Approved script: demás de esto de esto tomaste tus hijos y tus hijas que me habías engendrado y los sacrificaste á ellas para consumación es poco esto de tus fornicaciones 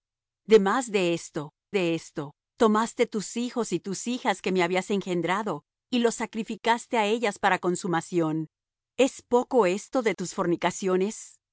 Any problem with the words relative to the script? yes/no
no